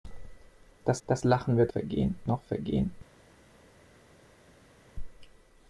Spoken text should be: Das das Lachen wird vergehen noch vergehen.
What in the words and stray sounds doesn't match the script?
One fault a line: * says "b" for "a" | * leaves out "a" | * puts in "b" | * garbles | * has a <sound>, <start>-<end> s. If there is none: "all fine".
all fine